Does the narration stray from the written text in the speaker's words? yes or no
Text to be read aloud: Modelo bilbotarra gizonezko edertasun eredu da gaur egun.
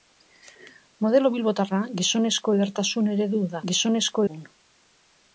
yes